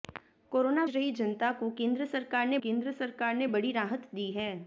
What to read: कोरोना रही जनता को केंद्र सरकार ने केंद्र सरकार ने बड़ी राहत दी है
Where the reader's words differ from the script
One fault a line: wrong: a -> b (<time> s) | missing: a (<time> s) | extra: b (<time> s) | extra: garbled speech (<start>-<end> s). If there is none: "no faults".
no faults